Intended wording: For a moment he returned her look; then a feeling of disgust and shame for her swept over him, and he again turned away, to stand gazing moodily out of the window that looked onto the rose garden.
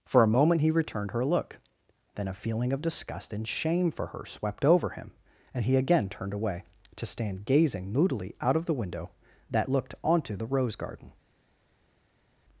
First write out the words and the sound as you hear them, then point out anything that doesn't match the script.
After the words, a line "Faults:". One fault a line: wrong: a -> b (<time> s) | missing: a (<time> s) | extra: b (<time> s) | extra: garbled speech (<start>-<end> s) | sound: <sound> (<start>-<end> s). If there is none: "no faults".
For a moment he returned her look; then a feeling of disgust and shame for her swept over him, and he again turned away, to stand gazing moodily out of the window that looked onto the rose garden.
Faults:
no faults